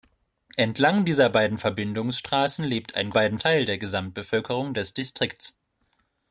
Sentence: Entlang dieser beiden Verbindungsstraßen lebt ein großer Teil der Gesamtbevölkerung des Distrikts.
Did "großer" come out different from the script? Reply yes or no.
yes